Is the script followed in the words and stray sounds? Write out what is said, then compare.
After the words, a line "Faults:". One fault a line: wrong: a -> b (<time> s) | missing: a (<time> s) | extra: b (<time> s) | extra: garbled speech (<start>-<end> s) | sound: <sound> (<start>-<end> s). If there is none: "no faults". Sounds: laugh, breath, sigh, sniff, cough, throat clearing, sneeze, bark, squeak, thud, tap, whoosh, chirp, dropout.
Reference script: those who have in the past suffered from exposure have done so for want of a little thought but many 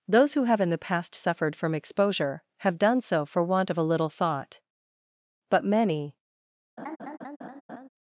those who have in the past suffered from exposure have done so for want of a little thought but many
Faults:
sound: laugh (6.8-7.9 s)